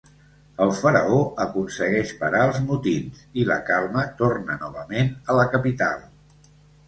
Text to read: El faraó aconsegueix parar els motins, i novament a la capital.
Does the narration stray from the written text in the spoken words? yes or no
yes